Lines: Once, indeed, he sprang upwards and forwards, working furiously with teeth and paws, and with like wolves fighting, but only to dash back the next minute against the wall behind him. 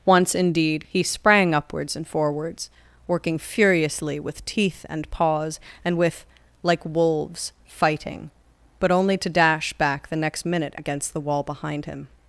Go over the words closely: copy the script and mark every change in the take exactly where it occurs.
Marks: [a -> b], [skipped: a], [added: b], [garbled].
Once, indeed, he sprang upwards and forwards, working furiously with teeth and paws, and with like wolves fighting, but only to dash back the next minute against the wall behind him.